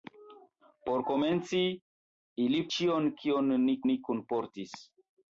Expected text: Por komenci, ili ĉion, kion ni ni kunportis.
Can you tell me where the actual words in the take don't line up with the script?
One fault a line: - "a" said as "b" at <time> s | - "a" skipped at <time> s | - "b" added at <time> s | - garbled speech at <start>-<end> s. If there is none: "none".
none